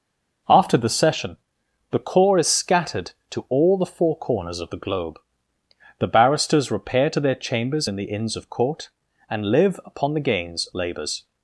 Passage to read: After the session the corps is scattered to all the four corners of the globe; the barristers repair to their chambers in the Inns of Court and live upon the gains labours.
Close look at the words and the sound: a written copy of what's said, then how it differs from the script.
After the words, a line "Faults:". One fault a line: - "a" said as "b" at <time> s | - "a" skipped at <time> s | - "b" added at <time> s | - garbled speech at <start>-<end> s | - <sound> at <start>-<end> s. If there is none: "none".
After the session the corps is scattered to all the four corners of the globe; the barristers repair to their chambers in the Inns of Court and live upon the gains labours.
Faults:
none